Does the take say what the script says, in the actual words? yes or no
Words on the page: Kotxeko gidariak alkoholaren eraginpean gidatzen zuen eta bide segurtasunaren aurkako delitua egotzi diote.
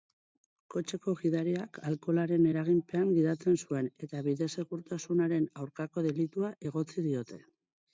yes